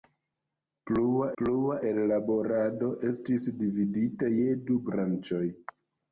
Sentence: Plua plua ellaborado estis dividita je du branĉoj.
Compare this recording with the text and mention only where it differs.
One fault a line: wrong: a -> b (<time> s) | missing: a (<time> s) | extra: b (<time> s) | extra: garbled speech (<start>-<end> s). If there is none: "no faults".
no faults